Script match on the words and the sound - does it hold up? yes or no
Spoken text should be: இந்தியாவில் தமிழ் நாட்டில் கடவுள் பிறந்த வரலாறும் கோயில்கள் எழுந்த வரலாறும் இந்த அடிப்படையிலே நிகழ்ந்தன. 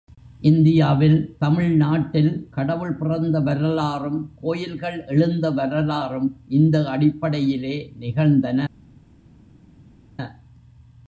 yes